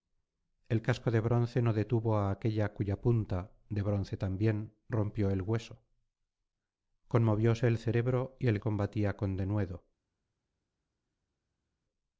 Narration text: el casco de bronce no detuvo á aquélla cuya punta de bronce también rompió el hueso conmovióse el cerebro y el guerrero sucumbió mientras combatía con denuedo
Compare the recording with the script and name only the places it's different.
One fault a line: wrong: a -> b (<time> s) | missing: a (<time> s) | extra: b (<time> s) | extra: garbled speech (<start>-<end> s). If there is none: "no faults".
missing: guerrero sucumbió mientras (8.6 s)